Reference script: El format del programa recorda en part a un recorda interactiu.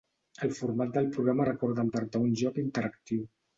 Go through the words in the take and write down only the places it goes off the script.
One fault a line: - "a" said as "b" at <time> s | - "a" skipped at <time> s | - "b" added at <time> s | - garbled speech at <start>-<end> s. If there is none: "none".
- "recorda" said as "joc" at 2.5 s